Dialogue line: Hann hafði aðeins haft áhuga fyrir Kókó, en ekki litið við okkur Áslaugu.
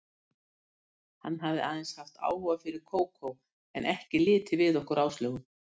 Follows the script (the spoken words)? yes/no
yes